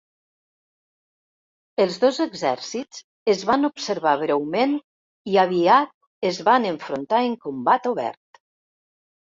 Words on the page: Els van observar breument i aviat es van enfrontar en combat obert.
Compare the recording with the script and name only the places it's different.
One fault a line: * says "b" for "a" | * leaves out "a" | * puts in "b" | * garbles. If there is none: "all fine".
* puts in "dos exèrcits es"